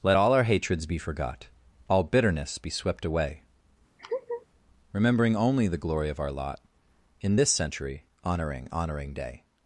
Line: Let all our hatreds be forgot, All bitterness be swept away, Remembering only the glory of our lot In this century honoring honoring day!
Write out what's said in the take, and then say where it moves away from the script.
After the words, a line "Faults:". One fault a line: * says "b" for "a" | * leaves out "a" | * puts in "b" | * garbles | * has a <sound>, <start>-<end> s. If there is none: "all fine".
Let all our hatreds be forgot, All bitterness be swept away, Remembering only the glory of our lot In this century honoring honoring day!
Faults:
* has a laugh, 4.0-4.5 s